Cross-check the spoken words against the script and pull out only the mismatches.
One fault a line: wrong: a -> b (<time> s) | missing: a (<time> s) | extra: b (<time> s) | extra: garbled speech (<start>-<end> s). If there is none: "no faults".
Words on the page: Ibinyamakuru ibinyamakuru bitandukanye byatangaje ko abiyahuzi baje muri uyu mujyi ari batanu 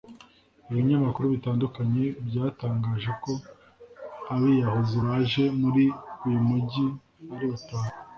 missing: ibinyamakuru (1.2 s)